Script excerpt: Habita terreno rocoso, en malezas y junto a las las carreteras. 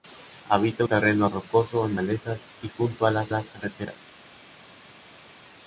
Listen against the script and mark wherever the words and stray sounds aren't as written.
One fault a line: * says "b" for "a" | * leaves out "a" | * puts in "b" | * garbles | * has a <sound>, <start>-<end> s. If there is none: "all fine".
all fine